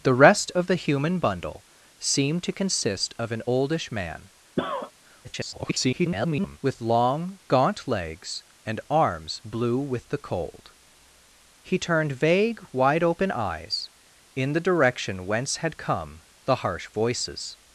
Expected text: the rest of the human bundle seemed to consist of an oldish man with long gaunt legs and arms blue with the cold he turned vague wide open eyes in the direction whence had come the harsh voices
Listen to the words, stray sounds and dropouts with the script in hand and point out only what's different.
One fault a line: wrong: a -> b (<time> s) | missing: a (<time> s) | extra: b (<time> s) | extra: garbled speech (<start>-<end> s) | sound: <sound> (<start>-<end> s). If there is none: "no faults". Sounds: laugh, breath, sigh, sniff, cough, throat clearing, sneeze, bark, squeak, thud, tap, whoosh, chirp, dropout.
sound: cough (4.6-4.9 s)
extra: garbled speech (5.2-6.6 s)